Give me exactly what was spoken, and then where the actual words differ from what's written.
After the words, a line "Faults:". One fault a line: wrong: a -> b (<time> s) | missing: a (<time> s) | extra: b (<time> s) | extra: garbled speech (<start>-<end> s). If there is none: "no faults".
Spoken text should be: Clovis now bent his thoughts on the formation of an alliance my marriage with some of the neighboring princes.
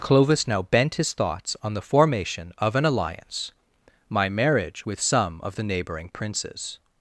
Clovis now bent his thoughts on the formation of an alliance my marriage with some of the neighboring princes.
Faults:
no faults